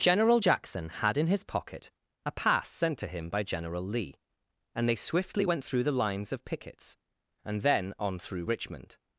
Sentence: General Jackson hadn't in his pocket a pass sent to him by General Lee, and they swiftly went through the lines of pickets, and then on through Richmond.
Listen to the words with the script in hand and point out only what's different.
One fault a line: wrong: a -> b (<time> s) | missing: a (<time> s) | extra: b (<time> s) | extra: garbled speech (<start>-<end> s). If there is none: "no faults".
wrong: hadn't -> had (0.9 s)